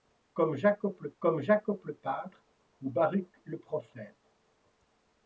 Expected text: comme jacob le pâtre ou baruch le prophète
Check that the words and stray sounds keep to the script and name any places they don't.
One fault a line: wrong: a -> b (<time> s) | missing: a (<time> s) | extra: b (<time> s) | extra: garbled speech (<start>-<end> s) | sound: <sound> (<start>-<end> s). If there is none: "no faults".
extra: comme jacob le (1.2 s)